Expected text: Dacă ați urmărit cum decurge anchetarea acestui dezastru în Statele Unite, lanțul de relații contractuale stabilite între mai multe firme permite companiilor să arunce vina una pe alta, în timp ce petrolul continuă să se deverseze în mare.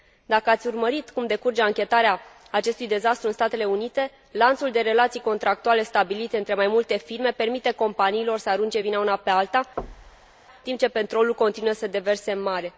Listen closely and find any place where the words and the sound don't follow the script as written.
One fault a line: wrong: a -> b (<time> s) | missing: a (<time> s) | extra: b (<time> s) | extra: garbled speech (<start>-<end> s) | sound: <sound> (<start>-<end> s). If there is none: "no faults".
missing: în (9.6 s)
sound: thud (9.8-10.4 s)